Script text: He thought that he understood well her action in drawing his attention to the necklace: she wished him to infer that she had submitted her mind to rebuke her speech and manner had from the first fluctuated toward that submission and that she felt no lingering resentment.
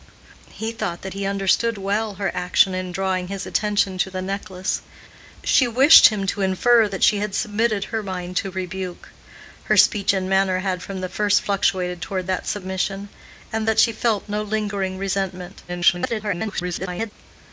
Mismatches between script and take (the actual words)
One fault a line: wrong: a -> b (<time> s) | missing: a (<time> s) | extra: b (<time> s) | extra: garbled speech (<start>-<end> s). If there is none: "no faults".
extra: garbled speech (15.7-17.1 s)